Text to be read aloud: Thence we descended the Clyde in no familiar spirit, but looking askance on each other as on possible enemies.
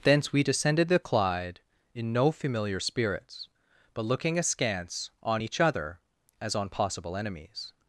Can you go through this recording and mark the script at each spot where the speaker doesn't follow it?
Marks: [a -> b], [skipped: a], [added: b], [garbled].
Thence we descended the Clyde in no familiar [spirit, -> spirits] but looking askance on each other as on possible enemies.